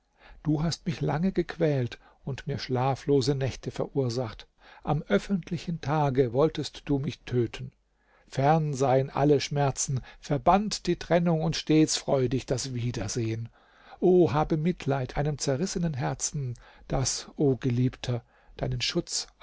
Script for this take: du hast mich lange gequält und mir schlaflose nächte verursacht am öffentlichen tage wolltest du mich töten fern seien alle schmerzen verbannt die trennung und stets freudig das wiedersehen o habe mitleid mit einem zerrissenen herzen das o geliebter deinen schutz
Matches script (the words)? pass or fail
fail